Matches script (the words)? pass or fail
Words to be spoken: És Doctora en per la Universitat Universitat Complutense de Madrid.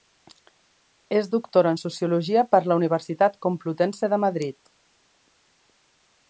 fail